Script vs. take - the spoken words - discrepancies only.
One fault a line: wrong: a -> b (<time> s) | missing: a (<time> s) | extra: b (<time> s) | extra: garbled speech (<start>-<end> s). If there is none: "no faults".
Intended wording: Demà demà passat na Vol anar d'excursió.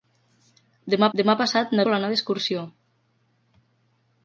no faults